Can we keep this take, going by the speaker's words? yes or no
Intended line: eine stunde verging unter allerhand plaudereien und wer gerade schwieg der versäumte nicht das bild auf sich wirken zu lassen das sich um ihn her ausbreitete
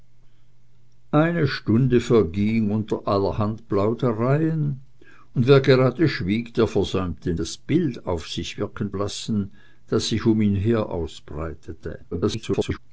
no